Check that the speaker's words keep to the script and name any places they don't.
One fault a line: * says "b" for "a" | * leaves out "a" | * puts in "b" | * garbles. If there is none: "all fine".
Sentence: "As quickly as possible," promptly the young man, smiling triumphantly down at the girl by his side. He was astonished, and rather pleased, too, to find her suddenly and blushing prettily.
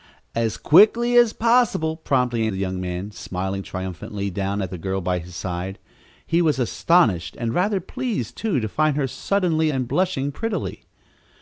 all fine